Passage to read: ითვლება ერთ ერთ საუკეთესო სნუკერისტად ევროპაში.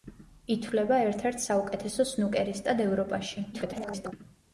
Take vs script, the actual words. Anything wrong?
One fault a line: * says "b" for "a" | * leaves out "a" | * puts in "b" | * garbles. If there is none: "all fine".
* garbles